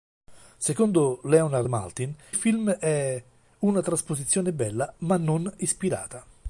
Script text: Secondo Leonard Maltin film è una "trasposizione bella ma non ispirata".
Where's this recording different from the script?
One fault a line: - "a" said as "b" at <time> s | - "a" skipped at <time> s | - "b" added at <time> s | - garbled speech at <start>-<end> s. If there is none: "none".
none